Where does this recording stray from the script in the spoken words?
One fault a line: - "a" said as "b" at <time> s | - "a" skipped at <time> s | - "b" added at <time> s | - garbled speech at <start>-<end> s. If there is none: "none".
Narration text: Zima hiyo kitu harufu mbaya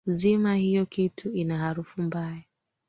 - "ina" added at 1.3 s